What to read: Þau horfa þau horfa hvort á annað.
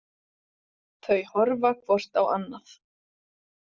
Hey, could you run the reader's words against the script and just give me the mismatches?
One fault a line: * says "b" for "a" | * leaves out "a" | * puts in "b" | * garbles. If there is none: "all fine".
* leaves out "þau horfa"